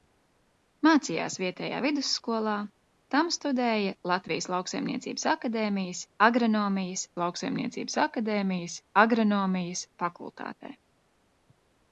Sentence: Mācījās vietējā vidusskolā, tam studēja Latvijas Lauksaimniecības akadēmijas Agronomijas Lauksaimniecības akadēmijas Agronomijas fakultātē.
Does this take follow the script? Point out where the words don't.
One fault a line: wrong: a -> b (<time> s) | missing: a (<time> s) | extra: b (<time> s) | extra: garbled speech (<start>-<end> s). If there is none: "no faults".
no faults